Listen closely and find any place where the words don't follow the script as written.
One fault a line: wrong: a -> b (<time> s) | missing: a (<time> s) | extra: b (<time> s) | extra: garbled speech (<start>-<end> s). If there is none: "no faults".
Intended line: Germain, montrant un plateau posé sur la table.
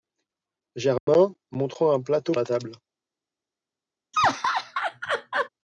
missing: posé sur (2.3 s)